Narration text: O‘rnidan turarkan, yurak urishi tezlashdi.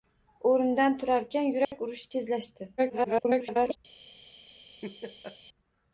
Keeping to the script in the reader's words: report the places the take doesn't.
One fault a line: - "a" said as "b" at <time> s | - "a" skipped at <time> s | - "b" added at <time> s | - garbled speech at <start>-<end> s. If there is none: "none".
- garbled speech at 2.8-3.8 s